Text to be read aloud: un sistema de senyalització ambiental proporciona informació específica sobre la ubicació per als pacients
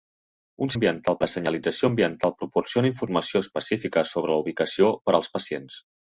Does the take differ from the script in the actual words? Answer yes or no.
yes